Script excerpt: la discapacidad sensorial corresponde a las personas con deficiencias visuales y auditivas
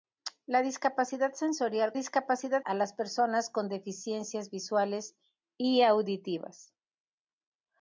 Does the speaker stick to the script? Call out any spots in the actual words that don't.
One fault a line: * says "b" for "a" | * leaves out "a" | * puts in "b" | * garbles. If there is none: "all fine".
* says "discapacidad" for "corresponde"